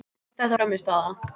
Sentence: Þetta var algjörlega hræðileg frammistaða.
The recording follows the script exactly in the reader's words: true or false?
false